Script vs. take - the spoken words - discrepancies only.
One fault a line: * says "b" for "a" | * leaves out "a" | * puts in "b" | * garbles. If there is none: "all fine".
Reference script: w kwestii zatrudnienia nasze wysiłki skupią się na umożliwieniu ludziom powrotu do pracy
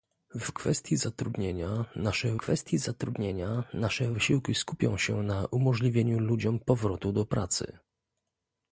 * puts in "kwestii zatrudnienia nasze"